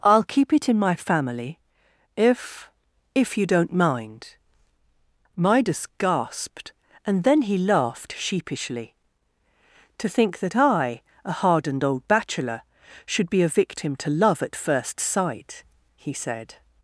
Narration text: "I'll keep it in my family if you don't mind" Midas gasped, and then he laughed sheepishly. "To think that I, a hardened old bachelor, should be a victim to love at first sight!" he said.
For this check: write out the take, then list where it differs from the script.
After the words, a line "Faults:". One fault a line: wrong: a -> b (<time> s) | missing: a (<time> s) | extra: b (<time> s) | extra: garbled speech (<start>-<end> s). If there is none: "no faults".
"I'll keep it in my family if if you don't mind" Midas gasped, and then he laughed sheepishly. "To think that I, a hardened old bachelor, should be a victim to love at first sight!" he said.
Faults:
extra: if (3.1 s)